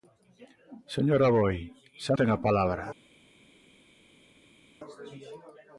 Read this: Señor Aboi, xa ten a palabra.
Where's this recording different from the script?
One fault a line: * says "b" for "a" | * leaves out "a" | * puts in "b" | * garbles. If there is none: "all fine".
all fine